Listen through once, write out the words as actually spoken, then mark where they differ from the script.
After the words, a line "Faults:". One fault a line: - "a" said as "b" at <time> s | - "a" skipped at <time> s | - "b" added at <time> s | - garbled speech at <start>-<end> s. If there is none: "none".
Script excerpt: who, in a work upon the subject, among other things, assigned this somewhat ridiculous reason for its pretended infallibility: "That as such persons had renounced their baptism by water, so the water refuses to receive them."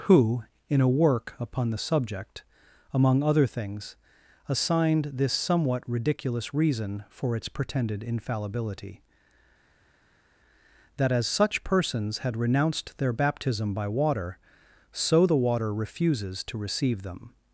who, in a work upon the subject, among other things, assigned this somewhat ridiculous reason for its pretended infallibility: "That as such persons had renounced their baptism by water, so the water refuses to receive them."
Faults:
none